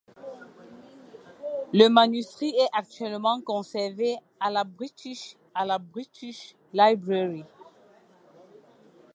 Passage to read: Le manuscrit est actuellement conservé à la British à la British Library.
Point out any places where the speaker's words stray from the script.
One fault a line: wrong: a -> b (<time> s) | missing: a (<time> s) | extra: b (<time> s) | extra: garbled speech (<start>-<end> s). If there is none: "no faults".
no faults